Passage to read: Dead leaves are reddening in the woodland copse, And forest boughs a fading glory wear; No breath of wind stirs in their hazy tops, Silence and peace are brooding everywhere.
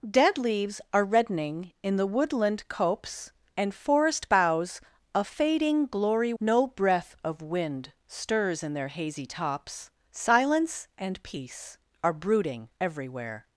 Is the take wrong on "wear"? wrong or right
wrong